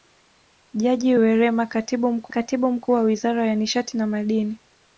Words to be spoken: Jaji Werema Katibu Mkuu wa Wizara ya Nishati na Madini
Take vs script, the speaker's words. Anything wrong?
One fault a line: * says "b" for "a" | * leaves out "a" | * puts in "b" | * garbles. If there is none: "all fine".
* puts in "Katibu Mkuu"